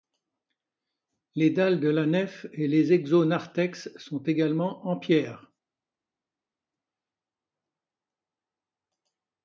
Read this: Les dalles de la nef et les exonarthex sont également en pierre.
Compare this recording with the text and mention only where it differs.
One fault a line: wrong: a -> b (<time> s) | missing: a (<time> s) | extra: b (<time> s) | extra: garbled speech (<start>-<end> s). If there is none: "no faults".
no faults